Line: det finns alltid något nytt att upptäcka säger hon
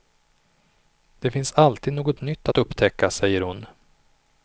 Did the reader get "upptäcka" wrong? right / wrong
right